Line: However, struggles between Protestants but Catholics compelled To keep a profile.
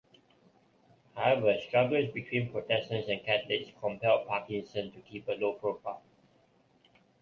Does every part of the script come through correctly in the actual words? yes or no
no